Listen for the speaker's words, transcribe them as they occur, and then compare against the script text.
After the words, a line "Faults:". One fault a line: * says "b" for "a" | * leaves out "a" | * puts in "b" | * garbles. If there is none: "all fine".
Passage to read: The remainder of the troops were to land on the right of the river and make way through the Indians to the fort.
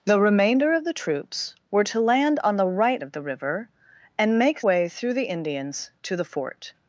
The remainder of the troops were to land on the right of the river and make way through the Indians to the fort.
Faults:
all fine